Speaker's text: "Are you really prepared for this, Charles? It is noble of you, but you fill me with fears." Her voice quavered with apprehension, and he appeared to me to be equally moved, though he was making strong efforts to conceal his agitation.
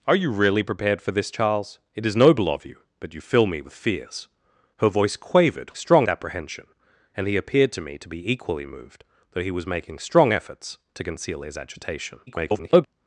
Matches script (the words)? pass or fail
fail